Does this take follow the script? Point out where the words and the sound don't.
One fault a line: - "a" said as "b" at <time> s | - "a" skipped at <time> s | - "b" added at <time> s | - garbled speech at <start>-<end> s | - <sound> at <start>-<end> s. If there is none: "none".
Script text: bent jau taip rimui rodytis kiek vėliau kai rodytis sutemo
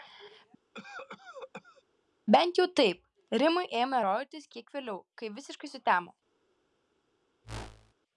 - cough at 0.7-1.8 s
- "ėmė" added at 3.8 s
- "rodytis" said as "visiškai" at 5.4 s
- whoosh at 7.4-7.9 s